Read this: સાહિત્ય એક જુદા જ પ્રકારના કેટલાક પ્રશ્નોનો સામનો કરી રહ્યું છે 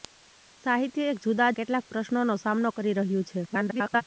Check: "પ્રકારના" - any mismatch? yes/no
yes